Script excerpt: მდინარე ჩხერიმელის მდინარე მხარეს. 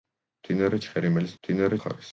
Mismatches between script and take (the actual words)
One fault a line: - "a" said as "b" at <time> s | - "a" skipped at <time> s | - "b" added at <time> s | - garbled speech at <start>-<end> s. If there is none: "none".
none